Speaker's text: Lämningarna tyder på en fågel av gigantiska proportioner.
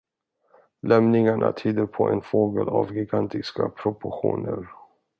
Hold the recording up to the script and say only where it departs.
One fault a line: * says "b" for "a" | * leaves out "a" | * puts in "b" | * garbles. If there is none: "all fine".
all fine